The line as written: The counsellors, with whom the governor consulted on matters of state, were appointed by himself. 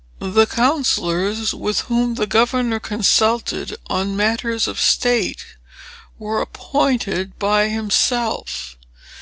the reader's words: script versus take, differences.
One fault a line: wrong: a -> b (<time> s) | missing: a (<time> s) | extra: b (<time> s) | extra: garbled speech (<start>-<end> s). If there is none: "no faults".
no faults